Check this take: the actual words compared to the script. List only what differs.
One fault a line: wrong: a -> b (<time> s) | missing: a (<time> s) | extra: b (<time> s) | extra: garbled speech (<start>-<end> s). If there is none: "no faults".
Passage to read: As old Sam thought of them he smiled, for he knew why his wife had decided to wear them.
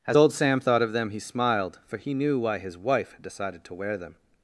no faults